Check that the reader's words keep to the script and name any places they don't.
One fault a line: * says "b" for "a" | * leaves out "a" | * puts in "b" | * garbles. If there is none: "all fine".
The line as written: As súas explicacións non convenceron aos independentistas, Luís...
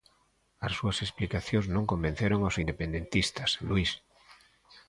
all fine